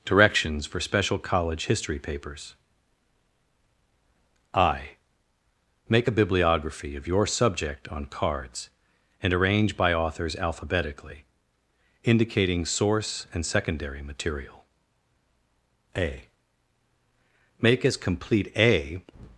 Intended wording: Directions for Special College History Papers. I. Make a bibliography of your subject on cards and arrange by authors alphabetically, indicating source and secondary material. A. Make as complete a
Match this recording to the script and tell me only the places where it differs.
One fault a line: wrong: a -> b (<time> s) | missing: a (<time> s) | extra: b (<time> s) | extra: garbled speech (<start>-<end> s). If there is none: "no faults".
no faults